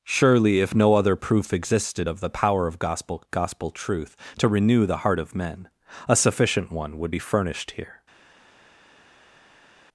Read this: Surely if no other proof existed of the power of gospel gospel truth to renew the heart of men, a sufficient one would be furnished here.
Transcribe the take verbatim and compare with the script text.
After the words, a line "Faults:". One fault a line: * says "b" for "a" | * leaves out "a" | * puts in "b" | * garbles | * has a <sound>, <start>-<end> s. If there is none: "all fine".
Surely if no other proof existed of the power of gospel gospel truth to renew the heart of men, a sufficient one would be furnished here.
Faults:
all fine